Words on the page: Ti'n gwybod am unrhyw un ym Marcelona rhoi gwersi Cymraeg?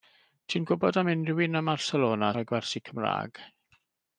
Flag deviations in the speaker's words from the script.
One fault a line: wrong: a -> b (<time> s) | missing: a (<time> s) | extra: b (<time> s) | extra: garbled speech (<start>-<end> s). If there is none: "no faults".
no faults